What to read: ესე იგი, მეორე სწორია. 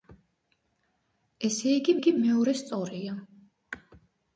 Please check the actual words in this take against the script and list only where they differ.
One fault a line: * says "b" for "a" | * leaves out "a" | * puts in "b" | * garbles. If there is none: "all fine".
* puts in "იგი"